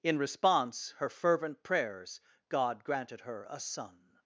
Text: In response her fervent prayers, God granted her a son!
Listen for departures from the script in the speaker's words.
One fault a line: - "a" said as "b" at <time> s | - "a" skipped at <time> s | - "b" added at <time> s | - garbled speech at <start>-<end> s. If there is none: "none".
none